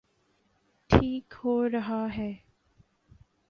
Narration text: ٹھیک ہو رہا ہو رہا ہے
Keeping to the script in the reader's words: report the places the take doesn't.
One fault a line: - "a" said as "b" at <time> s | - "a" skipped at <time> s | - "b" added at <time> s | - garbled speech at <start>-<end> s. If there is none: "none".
- "ہو رہا" skipped at 2.0 s